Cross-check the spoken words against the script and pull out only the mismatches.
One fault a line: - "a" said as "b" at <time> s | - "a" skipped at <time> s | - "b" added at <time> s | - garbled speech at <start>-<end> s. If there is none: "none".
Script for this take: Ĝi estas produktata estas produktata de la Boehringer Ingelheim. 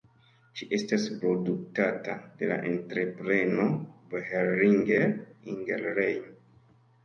- "estas produktata" skipped at 2.1 s
- "entrepreno" added at 2.7 s